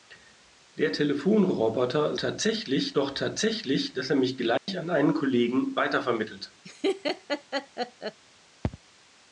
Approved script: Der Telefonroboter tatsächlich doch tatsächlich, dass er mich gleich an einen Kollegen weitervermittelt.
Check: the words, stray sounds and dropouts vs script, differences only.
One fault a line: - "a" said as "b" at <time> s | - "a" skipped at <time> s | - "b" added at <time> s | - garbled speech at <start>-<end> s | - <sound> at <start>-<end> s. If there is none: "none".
- dropout at 4.6-4.7 s
- laugh at 6.6-8.2 s